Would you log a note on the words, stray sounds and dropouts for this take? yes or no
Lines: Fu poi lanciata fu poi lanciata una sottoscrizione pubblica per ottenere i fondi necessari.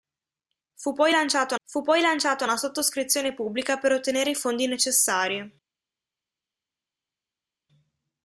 no